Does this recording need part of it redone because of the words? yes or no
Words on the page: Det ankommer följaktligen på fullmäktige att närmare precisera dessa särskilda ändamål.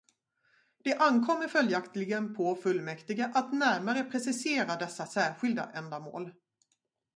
no